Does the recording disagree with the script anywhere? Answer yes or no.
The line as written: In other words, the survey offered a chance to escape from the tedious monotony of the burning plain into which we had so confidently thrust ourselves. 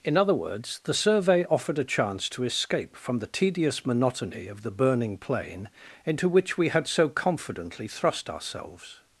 no